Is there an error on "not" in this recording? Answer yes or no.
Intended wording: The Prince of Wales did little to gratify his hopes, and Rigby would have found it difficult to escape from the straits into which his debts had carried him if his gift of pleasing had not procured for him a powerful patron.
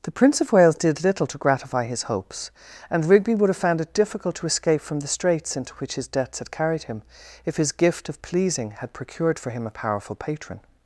yes